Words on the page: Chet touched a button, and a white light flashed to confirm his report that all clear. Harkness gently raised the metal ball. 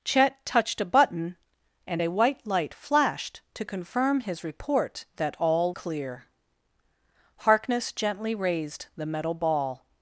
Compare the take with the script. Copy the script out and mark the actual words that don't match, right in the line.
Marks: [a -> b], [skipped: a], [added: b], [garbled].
Chet touched a button, and a white light flashed to confirm his report that all clear. Harkness gently raised the metal ball.